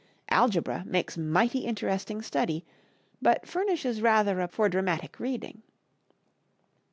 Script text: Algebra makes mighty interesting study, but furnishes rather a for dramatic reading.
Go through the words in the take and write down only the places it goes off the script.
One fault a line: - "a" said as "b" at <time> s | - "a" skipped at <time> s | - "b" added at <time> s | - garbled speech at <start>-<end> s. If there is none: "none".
none